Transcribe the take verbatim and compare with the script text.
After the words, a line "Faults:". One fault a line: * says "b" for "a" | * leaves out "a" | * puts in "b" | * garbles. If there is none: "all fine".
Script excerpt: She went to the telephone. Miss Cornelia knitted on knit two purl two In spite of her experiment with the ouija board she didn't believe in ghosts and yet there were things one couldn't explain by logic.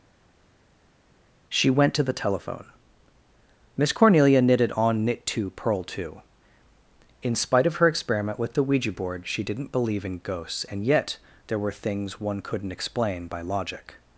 She went to the telephone. Miss Cornelia knitted on knit two purl two In spite of her experiment with the ouija board she didn't believe in ghosts and yet there were things one couldn't explain by logic.
Faults:
all fine